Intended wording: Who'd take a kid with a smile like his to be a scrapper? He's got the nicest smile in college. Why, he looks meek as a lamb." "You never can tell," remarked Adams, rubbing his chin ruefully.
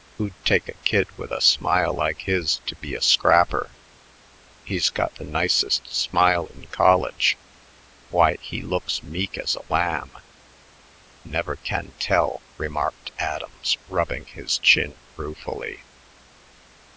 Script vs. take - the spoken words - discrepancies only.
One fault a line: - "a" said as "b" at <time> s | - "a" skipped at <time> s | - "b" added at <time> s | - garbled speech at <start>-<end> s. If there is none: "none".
- "You" skipped at 10.1 s